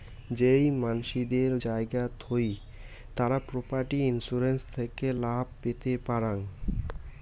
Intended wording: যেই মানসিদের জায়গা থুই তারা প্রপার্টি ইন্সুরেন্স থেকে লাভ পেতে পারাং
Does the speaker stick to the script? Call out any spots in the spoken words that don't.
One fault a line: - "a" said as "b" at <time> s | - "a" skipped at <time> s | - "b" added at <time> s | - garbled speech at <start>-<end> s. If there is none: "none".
none